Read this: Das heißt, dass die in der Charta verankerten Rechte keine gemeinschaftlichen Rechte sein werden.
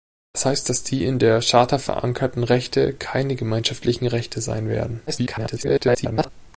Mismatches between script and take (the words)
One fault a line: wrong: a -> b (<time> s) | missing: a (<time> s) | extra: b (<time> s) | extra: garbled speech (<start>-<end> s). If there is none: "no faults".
extra: garbled speech (5.1-6.3 s)